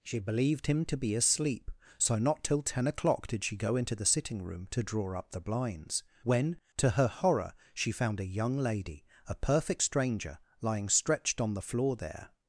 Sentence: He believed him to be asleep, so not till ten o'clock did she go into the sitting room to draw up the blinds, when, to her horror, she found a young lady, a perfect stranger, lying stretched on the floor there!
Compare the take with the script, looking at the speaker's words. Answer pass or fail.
fail